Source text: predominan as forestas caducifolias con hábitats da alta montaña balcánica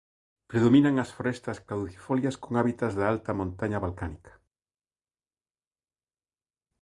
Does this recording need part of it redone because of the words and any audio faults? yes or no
no